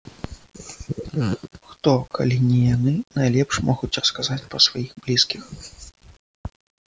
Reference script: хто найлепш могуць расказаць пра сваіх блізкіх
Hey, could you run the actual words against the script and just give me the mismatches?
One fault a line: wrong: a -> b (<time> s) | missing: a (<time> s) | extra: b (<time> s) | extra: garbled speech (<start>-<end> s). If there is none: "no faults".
extra: калі не яны (2.2 s)